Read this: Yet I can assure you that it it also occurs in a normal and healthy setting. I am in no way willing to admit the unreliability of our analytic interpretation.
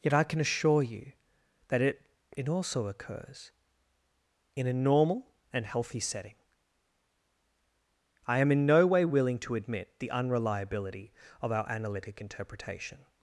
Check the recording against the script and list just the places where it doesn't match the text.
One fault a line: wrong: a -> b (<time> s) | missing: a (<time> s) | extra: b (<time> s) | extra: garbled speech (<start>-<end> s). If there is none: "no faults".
no faults